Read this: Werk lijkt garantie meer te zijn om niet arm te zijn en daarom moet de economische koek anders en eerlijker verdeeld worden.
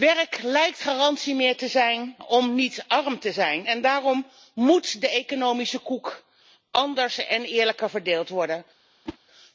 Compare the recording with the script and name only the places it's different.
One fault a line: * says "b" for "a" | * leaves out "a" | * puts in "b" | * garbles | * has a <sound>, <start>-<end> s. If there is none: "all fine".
* has a whoosh, 9.1-9.2 s